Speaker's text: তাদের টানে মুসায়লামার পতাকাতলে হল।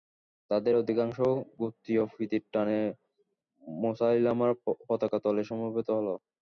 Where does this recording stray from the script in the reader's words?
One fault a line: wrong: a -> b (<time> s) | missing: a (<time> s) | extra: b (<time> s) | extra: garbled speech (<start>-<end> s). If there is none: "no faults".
extra: অধিকাংশ গোত্রীয় প্রীতির (0.7 s)
extra: সমবেত (5.4 s)